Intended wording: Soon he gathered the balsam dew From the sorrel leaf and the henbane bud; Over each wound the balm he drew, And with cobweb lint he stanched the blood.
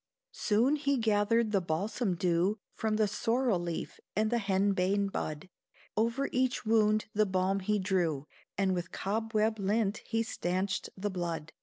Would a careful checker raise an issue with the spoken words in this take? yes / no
no